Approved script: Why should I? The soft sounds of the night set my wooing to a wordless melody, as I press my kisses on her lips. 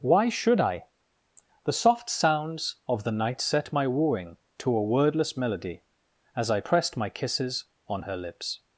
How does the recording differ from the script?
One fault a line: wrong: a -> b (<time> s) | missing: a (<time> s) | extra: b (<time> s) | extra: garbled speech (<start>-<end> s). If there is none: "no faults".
wrong: press -> pressed (6.6 s)